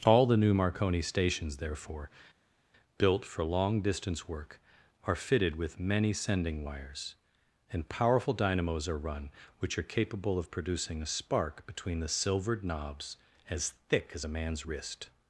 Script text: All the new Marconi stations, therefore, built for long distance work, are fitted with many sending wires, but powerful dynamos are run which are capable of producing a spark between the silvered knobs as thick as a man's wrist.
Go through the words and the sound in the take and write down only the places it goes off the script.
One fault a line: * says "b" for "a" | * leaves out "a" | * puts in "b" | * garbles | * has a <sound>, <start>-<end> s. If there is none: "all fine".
* says "and" for "but"